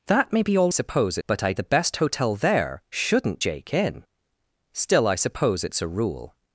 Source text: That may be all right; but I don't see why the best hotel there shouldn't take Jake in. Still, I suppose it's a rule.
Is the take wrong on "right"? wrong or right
wrong